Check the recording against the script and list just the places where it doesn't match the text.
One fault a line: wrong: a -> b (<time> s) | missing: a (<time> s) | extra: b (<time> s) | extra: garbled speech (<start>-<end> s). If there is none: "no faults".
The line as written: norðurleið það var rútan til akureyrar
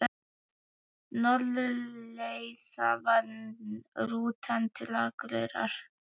no faults